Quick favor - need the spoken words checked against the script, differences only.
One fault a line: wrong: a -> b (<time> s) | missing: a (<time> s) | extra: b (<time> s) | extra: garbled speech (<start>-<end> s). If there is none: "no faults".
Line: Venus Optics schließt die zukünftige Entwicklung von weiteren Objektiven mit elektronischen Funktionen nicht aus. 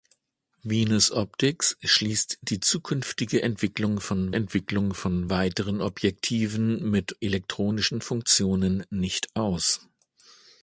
extra: Entwicklung von (4.3 s)